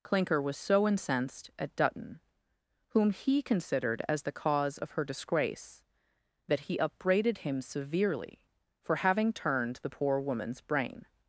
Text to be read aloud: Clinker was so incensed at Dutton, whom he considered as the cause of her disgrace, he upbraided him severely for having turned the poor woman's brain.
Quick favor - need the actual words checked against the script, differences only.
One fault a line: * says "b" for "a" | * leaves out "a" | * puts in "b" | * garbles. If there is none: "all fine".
* puts in "that"